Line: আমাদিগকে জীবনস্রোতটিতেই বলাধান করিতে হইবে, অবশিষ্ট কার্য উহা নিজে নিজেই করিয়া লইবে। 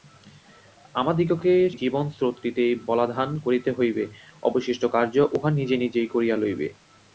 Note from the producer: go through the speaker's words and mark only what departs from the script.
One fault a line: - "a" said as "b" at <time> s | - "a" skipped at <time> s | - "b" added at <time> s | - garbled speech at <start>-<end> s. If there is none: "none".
none